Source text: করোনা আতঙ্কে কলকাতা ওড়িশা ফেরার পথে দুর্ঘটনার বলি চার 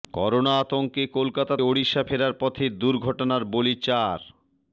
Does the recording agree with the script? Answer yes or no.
yes